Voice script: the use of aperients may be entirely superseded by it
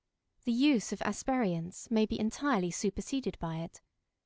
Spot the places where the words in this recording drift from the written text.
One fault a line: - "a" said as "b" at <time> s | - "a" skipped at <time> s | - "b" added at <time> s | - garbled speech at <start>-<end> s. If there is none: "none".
none